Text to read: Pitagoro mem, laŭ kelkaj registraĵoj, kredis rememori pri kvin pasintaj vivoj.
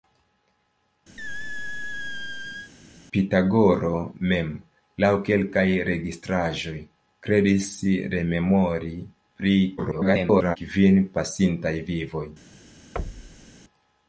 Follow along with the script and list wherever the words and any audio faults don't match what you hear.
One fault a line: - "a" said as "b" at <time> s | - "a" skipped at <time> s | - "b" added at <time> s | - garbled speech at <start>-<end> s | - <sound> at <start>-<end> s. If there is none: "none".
- squeak at 1.2-2.7 s
- garbled speech at 9.8-10.6 s
- thud at 13.0-13.5 s